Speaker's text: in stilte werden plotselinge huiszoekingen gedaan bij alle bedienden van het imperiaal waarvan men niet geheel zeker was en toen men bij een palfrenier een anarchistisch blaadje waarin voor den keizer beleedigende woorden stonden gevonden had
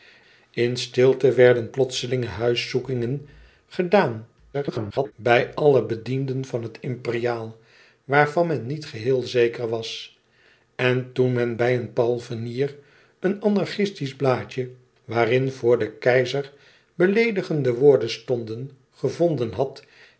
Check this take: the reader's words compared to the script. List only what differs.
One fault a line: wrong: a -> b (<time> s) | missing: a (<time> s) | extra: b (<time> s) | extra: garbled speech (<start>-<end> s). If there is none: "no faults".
extra: garbled speech (4.5-5.1 s)